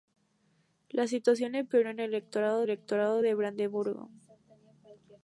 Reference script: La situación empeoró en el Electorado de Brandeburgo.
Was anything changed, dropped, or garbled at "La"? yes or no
no